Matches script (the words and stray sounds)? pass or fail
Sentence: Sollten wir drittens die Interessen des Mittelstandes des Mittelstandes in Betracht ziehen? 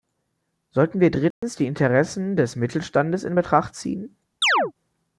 fail